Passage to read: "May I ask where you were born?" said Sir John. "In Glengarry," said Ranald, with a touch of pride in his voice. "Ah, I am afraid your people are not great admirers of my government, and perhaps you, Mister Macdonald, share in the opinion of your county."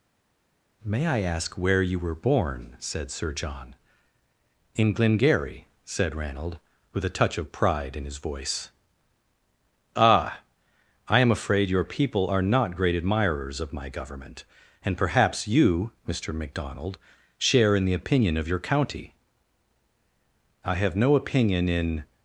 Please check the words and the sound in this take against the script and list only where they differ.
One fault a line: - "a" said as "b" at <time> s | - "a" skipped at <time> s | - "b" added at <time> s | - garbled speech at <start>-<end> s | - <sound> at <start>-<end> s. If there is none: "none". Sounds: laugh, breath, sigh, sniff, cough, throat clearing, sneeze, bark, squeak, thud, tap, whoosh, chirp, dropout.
- "I have no opinion in" added at 20.6 s